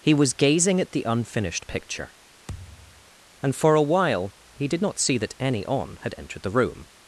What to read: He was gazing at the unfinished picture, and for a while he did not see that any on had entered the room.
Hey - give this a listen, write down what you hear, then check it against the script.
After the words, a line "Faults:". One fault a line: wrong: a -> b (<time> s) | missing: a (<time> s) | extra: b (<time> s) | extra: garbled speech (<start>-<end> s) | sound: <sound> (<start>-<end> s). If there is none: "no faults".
He was gazing at the unfinished picture, and for a while he did not see that any on had entered the room.
Faults:
sound: thud (2.5-3.1 s)